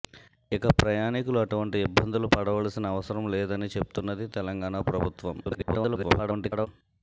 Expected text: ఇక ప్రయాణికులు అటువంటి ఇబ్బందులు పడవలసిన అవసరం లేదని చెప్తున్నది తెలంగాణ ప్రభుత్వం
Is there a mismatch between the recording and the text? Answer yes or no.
yes